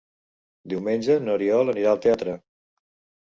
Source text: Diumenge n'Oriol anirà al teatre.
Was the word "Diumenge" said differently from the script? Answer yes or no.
no